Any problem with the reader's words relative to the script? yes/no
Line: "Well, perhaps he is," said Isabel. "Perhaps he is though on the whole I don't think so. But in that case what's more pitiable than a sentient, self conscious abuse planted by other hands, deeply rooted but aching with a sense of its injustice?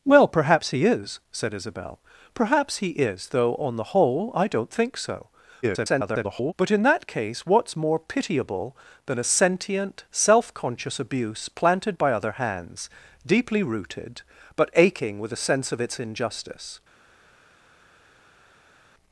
yes